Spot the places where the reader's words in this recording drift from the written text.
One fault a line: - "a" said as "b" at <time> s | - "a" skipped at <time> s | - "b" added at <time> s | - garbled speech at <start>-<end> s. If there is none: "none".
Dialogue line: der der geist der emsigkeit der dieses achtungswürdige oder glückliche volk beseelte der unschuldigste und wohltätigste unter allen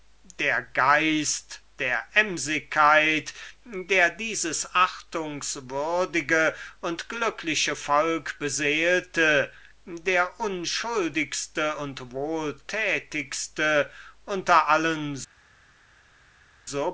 - "der" skipped at 0.6 s
- "oder" said as "und" at 6.8 s